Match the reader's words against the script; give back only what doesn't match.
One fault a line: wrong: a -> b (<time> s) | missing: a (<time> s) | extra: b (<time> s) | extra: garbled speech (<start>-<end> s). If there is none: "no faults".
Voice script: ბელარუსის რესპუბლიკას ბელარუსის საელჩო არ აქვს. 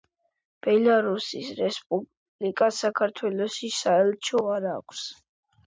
wrong: ბელარუსის -> საქართველოში (2.9 s)